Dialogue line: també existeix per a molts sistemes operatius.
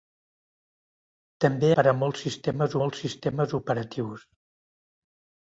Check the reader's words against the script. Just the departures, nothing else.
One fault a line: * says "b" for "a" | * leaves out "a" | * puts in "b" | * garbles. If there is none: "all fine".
* leaves out "existeix"
* puts in "molts sistemes"